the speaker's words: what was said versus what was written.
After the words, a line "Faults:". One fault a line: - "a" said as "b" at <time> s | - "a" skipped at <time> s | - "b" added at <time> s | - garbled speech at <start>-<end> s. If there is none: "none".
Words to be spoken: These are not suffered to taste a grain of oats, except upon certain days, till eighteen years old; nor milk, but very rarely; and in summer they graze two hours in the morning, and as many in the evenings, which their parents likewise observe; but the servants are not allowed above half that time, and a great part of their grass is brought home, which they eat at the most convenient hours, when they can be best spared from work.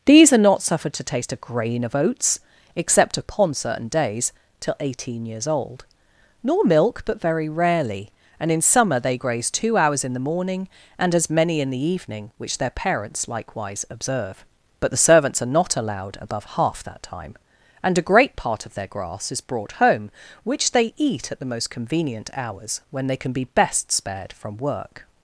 These are not suffered to taste a grain of oats, except upon certain days, till eighteen years old; nor milk, but very rarely; and in summer they graze two hours in the morning, and as many in the evening, which their parents likewise observe; but the servants are not allowed above half that time, and a great part of their grass is brought home, which they eat at the most convenient hours, when they can be best spared from work.
Faults:
- "evenings" said as "evening" at 11.9 s